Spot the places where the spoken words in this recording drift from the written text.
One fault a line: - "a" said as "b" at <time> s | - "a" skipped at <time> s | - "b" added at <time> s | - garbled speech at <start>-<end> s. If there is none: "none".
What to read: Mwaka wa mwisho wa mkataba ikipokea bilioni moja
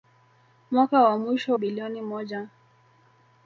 - "wa mkataba ikipokea" skipped at 1.6 s